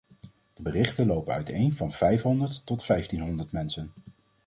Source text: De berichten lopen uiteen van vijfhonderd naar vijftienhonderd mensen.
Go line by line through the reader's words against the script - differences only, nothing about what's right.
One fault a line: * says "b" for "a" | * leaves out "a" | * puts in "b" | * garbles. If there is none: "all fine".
* says "tot" for "naar"